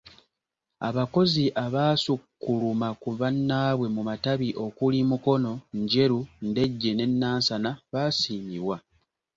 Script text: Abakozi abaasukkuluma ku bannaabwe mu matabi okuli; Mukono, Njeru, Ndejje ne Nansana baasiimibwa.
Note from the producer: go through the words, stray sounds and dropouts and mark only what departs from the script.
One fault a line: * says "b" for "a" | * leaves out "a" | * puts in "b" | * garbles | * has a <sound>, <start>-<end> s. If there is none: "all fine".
all fine